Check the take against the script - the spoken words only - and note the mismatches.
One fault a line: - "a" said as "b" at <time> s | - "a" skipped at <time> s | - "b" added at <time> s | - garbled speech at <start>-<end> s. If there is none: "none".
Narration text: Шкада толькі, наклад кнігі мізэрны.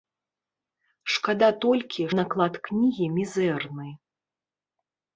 none